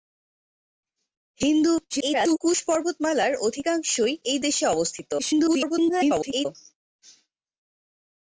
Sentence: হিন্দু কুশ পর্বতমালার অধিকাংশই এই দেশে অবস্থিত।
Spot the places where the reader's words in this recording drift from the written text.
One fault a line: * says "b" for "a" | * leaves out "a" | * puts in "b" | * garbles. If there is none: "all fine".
* garbles
* garbles